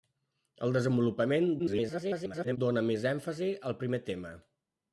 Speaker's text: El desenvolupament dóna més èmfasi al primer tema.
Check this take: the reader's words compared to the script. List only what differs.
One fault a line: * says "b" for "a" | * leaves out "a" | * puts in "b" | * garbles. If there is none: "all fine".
* garbles